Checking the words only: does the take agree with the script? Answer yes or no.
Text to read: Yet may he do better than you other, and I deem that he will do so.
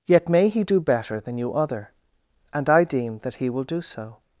yes